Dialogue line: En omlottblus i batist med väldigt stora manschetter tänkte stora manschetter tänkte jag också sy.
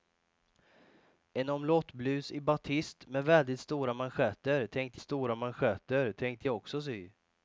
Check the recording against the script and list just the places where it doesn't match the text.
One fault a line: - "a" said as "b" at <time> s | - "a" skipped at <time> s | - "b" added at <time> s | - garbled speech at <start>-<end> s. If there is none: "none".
none